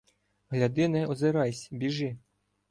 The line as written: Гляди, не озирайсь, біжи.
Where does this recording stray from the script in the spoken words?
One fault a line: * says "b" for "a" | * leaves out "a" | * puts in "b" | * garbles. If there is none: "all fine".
all fine